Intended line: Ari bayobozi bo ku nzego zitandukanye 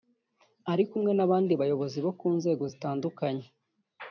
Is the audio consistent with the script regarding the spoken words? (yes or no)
no